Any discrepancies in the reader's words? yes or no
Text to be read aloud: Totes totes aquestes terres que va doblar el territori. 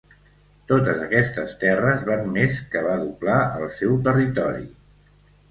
yes